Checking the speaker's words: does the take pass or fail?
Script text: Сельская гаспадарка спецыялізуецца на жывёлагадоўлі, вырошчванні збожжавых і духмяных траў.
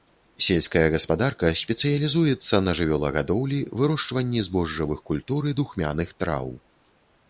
fail